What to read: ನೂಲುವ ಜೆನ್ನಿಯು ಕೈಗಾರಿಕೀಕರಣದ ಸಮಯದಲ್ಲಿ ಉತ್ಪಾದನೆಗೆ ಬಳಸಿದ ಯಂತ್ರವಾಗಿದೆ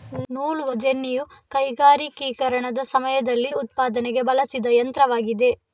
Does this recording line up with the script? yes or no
yes